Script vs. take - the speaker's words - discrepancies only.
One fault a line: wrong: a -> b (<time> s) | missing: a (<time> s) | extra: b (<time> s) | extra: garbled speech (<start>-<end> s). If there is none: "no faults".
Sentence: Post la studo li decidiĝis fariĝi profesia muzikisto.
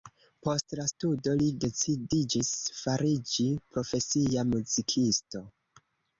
no faults